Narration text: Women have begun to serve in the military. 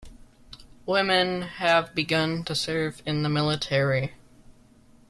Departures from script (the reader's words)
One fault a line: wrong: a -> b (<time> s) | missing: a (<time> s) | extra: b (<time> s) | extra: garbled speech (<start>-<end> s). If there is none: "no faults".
no faults